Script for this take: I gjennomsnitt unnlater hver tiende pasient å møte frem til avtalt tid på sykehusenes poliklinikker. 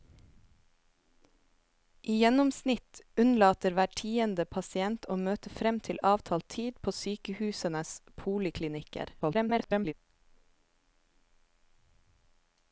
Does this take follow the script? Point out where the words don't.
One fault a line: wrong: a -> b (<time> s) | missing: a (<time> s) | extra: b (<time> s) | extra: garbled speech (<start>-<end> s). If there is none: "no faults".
extra: garbled speech (9.2-9.9 s)